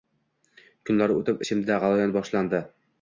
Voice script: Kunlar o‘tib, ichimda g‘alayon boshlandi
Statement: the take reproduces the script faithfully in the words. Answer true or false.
true